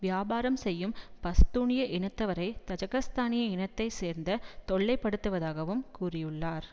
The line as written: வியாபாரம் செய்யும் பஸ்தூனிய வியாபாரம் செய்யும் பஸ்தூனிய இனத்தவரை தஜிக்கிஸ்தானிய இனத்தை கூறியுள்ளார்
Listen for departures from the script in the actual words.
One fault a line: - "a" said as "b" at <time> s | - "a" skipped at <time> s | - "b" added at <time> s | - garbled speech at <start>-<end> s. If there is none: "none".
- "வியாபாரம் செய்யும் பஸ்தூனிய" skipped at 1.8 s
- "சேர்ந்த தொல்லைப்படுத்துவதாகவும்" added at 4.0 s